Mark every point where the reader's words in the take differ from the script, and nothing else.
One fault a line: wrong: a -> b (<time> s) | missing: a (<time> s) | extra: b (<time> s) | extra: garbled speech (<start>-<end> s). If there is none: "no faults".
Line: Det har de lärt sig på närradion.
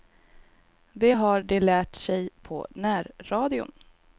no faults